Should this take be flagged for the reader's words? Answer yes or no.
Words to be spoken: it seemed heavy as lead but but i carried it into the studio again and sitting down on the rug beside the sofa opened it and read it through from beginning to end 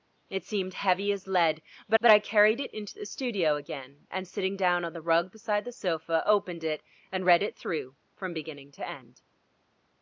no